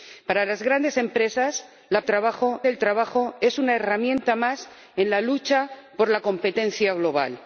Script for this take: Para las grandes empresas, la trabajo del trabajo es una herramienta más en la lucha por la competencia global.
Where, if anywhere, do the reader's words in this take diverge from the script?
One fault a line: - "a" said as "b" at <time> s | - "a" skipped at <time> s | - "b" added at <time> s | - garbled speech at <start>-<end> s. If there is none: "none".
none